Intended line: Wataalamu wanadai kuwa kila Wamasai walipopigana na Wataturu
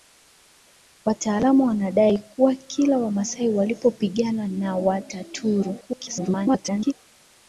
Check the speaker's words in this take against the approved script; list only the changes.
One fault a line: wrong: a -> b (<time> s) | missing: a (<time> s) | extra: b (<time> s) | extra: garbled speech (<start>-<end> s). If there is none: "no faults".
extra: garbled speech (5.8-6.9 s)